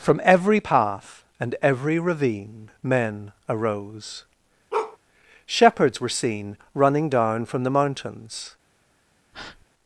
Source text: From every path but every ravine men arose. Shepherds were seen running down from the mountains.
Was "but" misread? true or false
true